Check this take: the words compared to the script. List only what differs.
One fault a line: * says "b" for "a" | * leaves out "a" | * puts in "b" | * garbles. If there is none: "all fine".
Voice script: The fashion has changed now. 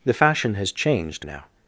all fine